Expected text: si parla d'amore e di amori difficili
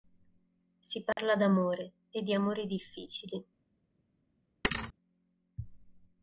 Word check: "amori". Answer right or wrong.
right